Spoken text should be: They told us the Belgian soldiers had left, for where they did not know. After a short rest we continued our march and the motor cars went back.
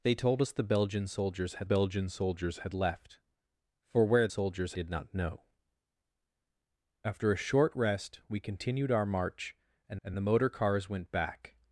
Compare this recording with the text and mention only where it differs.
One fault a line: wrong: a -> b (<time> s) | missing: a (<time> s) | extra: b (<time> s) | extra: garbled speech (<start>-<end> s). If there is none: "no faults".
extra: Belgian soldiers had (1.6 s)
wrong: they -> soldiers (4.3 s)
extra: and (10.0 s)